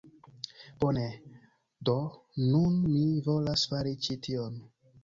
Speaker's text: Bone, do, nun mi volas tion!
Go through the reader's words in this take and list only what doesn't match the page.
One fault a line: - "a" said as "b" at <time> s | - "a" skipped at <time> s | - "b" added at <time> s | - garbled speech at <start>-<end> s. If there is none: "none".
- "fari ĉi" added at 3.8 s